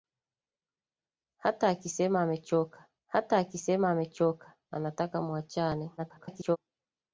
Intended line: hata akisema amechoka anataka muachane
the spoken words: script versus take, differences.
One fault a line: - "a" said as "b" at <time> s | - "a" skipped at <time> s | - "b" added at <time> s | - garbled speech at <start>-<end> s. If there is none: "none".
- "hata akisema amechoka" added at 3.1 s
- garbled speech at 6.0-6.6 s